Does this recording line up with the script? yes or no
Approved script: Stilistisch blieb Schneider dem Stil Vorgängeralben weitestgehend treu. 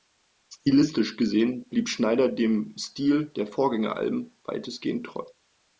no